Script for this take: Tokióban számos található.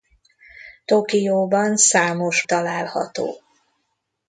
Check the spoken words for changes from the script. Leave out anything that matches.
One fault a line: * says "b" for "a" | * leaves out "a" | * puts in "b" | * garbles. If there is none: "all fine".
all fine